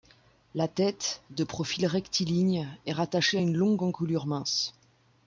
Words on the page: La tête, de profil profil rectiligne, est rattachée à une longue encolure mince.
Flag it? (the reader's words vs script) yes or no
yes